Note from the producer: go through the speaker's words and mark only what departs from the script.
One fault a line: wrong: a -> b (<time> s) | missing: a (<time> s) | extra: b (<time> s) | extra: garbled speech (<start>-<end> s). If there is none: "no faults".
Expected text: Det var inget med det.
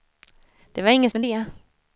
no faults